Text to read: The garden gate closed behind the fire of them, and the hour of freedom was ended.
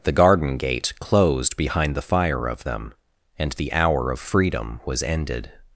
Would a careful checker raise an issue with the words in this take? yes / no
no